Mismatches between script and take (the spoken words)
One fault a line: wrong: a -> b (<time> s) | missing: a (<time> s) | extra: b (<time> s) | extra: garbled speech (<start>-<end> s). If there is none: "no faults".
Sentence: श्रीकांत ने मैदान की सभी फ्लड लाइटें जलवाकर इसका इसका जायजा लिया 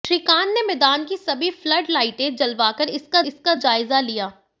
no faults